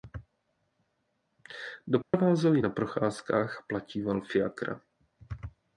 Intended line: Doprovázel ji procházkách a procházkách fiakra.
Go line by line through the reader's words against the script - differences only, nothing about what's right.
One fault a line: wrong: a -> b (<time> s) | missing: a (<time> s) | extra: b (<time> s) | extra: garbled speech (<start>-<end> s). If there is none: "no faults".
extra: na (2.6 s)
wrong: procházkách -> platíval (3.7 s)